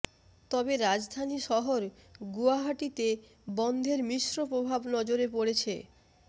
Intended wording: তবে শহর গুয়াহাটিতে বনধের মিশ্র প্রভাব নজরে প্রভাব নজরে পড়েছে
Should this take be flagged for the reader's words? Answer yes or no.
yes